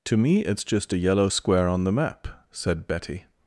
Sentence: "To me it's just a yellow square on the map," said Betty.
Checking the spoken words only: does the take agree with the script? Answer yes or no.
yes